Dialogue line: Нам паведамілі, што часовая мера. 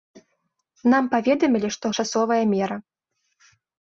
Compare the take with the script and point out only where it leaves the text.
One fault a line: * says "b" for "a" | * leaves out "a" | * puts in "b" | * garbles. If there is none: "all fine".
all fine